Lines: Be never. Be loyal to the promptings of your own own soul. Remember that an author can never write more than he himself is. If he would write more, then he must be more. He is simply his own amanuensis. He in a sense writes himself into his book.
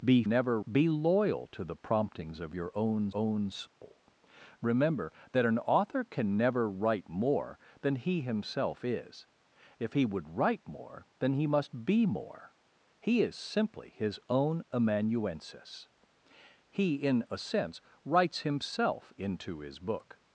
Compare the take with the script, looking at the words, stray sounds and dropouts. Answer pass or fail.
fail